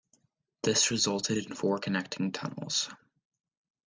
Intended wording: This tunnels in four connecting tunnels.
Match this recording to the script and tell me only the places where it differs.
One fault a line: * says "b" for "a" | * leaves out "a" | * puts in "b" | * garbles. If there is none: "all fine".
* says "resulted" for "tunnels"